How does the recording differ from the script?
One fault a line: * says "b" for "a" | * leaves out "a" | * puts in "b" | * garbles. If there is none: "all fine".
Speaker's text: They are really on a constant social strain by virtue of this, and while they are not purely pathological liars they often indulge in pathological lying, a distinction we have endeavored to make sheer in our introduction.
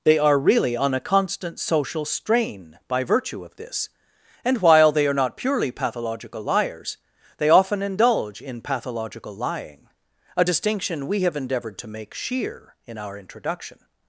all fine